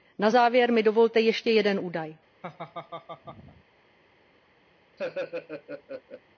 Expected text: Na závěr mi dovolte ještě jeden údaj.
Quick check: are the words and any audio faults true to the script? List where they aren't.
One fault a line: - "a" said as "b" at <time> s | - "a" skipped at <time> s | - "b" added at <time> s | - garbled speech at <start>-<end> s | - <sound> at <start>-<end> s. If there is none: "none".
- laugh at 2.4-3.6 s
- laugh at 5.0-6.2 s